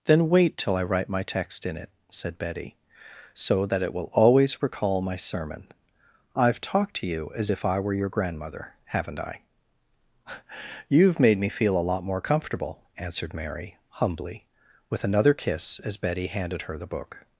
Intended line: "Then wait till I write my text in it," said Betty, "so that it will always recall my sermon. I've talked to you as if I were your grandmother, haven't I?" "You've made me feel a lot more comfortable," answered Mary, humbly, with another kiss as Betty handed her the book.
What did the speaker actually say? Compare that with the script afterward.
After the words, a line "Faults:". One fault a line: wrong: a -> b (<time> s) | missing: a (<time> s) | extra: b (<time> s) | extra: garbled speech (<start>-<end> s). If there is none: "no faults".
"Then wait till I write my text in it," said Betty, "so that it will always recall my sermon. I've talked to you as if I were your grandmother, haven't I?" "You've made me feel a lot more comfortable," answered Mary, humbly, with another kiss as Betty handed her the book.
Faults:
no faults